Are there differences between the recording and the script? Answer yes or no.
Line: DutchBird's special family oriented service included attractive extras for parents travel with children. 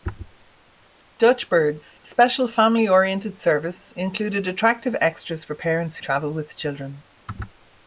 no